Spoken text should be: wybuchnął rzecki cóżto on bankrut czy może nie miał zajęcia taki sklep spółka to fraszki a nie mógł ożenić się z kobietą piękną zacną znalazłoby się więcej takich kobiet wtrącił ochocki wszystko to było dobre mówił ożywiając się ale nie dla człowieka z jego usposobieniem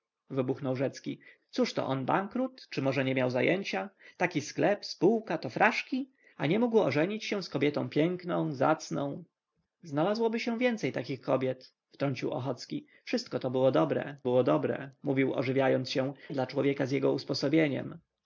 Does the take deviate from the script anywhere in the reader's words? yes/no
yes